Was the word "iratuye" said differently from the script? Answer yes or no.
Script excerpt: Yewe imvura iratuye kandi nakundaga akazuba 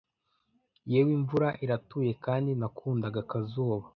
no